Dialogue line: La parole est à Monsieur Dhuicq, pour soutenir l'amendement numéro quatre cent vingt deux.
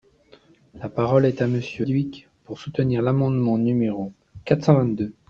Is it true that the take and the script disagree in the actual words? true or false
false